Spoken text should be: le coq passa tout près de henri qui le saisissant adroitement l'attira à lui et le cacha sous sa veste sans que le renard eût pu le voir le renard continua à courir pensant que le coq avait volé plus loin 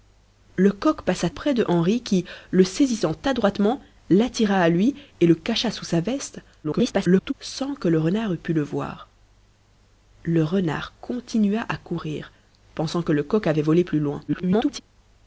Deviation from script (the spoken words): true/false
true